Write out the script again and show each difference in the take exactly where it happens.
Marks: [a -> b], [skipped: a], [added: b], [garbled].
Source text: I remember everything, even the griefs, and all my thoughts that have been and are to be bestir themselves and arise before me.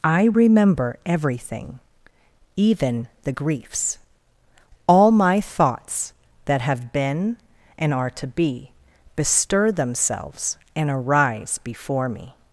I remember everything, even the griefs, [skipped: and] all my thoughts that have been and are to be bestir themselves and arise before me.